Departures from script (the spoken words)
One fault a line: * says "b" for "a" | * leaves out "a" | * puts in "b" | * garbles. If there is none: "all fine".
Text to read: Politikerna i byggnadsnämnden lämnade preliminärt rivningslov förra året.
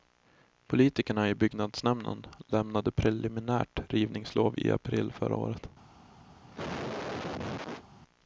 * puts in "i april"